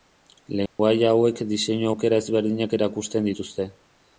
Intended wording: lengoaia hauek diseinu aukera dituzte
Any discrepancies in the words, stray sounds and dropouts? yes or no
yes